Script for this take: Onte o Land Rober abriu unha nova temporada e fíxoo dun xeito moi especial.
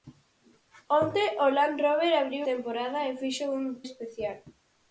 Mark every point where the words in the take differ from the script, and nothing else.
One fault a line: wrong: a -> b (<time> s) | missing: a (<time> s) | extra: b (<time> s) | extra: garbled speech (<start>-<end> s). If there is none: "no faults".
missing: unha nova (2.4 s)
missing: dun xeito moi (3.5 s)